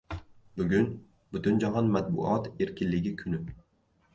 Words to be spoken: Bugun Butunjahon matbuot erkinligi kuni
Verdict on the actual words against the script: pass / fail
pass